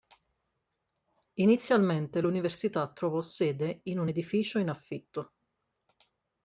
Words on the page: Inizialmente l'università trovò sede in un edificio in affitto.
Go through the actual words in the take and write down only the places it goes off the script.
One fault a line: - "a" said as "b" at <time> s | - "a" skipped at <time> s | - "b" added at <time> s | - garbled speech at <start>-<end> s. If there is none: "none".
none